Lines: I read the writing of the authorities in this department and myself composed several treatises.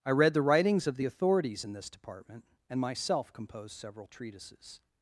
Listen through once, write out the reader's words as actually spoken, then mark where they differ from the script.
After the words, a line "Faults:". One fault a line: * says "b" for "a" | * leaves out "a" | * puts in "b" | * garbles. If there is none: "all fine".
I read the writings of the authorities in this department and myself composed several treatises.
Faults:
* says "writings" for "writing"